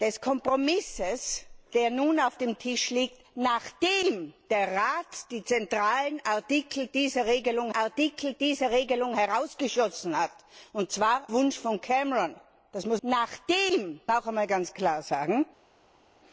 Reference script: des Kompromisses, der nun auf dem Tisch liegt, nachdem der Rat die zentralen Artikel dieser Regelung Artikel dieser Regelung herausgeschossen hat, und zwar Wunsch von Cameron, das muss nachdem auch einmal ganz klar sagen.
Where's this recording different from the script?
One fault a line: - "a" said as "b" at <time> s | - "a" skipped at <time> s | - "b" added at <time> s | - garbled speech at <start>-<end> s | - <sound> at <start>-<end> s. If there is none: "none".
none